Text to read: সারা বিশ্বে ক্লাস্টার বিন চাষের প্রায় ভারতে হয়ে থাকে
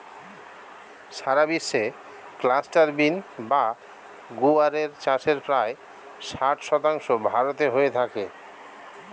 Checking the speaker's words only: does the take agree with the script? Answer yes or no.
no